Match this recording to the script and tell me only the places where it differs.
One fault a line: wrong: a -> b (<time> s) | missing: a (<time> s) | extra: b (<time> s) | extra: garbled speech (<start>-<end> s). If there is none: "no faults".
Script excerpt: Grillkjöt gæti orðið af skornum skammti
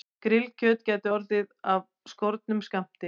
no faults